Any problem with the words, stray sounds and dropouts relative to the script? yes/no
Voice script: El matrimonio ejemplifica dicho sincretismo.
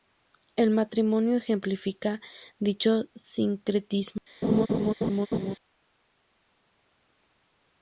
yes